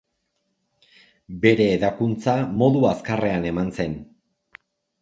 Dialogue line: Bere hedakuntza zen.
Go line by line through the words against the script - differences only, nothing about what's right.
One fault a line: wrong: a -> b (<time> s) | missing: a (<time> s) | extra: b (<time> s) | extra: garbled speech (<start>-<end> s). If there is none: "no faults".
extra: modu azkarrean eman (2.6 s)